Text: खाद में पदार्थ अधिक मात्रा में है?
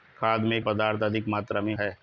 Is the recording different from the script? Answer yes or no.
no